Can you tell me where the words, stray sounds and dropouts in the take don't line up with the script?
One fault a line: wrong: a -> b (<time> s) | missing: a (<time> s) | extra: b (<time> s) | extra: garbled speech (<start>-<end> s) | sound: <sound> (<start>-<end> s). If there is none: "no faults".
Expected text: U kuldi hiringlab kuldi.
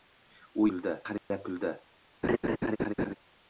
sound: dropout (1.2-1.3 s)
sound: laugh (2.2-3.2 s)